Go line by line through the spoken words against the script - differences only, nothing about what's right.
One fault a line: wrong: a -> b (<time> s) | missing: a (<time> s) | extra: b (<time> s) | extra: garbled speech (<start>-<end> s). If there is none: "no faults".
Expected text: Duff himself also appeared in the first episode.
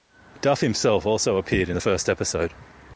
no faults